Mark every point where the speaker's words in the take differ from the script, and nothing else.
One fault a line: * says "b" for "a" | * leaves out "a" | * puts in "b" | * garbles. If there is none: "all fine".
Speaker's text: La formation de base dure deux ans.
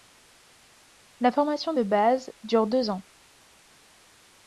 all fine